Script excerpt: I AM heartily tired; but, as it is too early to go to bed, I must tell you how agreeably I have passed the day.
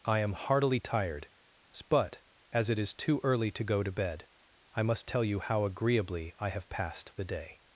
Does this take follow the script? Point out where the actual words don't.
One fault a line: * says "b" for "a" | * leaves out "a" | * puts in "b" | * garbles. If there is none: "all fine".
all fine